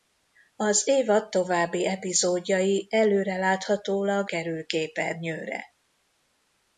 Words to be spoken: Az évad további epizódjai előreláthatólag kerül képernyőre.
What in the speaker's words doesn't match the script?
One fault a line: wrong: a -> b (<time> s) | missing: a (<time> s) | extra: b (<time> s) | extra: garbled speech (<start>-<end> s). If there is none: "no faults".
no faults